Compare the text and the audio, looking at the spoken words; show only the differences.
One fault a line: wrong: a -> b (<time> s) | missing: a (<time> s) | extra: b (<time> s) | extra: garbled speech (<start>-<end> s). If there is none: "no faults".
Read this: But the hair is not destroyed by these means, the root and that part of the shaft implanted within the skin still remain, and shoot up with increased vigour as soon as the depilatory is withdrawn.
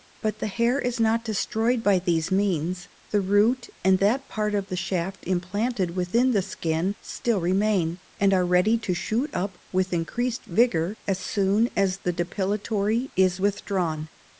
extra: are ready to (8.3 s)